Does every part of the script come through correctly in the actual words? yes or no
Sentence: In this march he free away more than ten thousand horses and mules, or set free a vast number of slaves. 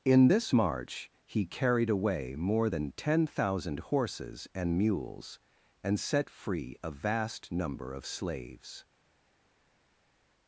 no